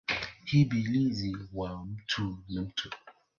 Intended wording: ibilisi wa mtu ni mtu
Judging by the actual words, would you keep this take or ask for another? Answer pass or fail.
pass